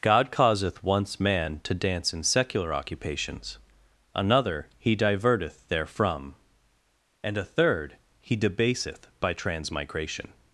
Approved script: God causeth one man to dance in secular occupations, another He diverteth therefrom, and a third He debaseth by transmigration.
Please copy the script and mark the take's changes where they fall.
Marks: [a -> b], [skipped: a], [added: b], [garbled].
God causeth [one -> once] man to dance in secular occupations, another He diverteth therefrom, and a third He debaseth by transmigration.